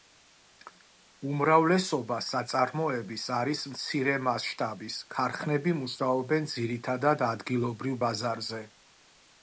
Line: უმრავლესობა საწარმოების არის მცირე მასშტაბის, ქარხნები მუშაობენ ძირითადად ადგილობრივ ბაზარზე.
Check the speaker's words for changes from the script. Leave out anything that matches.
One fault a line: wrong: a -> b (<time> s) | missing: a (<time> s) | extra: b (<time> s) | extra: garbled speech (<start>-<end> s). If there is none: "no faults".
no faults